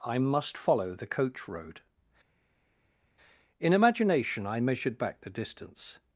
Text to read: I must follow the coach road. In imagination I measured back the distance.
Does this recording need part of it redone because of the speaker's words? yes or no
no